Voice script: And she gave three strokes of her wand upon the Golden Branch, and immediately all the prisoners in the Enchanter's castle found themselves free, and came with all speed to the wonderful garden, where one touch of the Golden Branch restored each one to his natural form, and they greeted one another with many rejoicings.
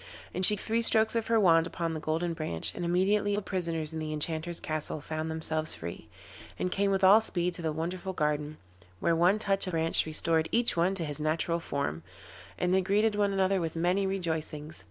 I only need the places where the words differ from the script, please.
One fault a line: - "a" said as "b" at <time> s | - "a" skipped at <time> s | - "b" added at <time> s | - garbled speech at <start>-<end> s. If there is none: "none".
- "gave" skipped at 0.6 s
- "all" skipped at 3.4 s
- "the Golden" skipped at 9.7 s